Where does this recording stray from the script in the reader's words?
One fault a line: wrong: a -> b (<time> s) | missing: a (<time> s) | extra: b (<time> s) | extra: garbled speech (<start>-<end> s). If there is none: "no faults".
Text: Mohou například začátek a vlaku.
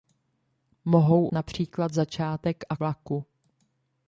no faults